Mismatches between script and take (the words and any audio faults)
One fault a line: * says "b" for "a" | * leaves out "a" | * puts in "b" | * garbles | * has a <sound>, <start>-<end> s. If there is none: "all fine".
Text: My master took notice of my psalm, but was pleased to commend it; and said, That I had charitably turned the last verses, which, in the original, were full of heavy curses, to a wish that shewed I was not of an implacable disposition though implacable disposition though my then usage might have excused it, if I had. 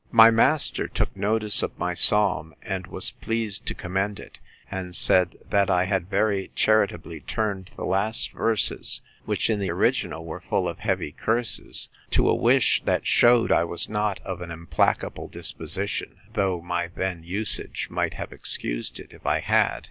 * says "and" for "but"
* puts in "very"
* leaves out "implacable disposition though"